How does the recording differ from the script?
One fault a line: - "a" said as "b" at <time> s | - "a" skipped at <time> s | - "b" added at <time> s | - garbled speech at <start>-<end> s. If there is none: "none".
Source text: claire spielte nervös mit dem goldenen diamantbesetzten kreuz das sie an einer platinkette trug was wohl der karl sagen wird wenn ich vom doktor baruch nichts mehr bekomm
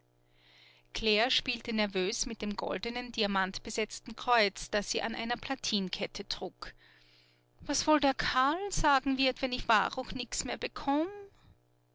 - "vom doktor" skipped at 9.6 s